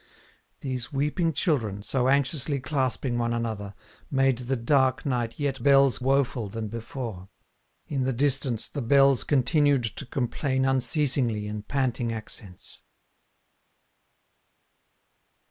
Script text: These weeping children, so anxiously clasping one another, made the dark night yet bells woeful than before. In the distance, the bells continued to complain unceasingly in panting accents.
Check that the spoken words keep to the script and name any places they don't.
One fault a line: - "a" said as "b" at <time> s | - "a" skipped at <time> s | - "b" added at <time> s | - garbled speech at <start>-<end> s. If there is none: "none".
none